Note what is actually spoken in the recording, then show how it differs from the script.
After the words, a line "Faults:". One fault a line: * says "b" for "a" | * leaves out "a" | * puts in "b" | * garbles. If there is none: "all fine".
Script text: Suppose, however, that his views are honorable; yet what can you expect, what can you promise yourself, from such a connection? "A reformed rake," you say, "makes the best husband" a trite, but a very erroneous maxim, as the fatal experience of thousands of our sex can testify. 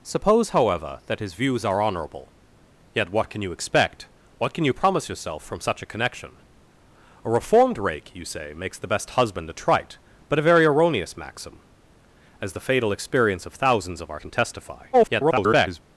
Suppose, however, that his views are honorable; yet what can you expect, what can you promise yourself, from such a connection? "A reformed rake," you say, "makes the best husband" a trite, but a very erroneous maxim, as the fatal experience of thousands of our can testify. [garbled]
Faults:
* leaves out "sex"
* garbles